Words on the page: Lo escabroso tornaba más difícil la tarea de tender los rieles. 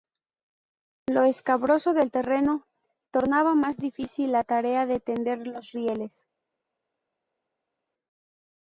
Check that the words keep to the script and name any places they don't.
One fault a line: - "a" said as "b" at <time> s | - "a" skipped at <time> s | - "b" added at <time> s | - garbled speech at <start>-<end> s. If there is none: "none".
- "del terreno" added at 1.9 s